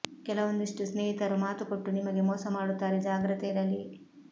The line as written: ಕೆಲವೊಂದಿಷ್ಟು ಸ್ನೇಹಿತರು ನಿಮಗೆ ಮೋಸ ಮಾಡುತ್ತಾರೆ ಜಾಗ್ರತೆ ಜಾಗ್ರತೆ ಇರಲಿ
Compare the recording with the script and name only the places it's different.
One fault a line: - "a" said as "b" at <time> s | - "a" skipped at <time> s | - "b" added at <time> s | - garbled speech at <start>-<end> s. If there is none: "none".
- "ಮಾತು ಕೊಟ್ಟು" added at 1.4 s
- "ಜಾಗ್ರತೆ" skipped at 3.5 s